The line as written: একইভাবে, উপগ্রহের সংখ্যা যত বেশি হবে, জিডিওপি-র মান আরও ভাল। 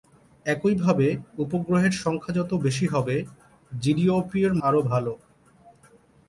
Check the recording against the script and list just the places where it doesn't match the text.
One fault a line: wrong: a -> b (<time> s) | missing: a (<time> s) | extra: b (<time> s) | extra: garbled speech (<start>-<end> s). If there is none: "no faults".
missing: মান (4.5 s)